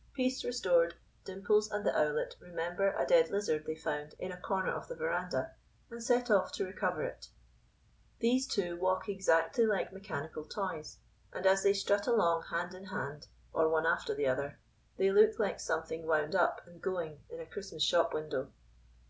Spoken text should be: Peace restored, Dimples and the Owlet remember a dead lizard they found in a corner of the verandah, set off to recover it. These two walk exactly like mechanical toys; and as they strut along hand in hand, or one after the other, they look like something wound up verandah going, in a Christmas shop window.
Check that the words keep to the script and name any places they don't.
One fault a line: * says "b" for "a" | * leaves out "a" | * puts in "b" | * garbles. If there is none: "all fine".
* puts in "and"
* says "and" for "verandah"